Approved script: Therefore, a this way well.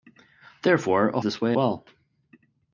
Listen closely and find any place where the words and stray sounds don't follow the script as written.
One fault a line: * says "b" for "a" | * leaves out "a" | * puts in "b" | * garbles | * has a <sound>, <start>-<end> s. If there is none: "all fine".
all fine